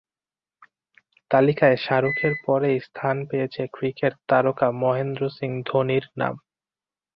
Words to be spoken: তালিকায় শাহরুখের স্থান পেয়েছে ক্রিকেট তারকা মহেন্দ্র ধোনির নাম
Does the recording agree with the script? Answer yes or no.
no